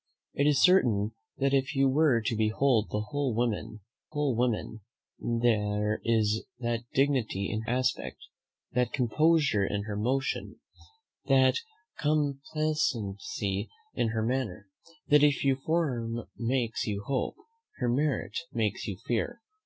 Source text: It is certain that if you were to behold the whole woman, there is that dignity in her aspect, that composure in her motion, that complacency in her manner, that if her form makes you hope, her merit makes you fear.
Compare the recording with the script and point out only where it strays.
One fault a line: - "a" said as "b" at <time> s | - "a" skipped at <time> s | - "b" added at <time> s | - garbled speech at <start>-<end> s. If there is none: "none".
- "whole woman" added at 4.1 s
- "her" skipped at 7.6 s